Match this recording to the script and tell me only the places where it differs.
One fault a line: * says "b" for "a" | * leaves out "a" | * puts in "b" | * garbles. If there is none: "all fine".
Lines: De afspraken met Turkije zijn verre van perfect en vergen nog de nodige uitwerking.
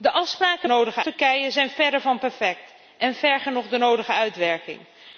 * says "nodige" for "met"